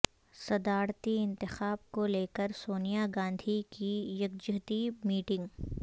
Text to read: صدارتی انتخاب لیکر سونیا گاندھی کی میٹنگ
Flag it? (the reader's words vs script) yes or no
yes